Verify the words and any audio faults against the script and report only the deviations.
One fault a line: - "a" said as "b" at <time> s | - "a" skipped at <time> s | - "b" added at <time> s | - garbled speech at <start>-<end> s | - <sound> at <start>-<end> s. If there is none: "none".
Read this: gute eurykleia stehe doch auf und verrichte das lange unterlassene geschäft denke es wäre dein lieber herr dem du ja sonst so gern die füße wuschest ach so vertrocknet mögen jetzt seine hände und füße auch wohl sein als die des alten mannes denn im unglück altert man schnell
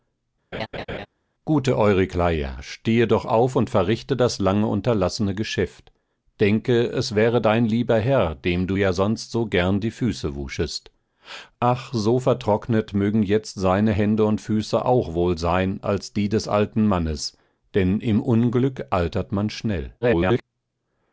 - laugh at 0.5-1.1 s
- garbled speech at 20.0-20.4 s